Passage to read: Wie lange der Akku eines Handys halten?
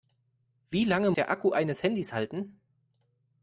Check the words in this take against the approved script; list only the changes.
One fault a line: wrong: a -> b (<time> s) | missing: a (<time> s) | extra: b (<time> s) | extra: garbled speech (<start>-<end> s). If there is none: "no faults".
no faults